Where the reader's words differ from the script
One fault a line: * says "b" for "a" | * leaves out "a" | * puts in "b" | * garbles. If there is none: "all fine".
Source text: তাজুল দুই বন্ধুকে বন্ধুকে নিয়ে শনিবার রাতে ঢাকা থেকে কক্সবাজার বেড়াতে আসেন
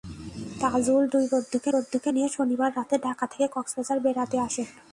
all fine